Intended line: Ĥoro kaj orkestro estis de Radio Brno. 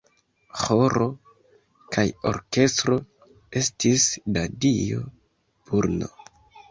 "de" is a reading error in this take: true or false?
true